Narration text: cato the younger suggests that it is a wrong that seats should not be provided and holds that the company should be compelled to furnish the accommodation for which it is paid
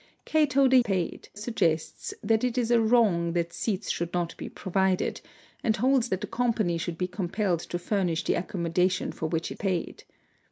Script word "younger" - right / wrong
wrong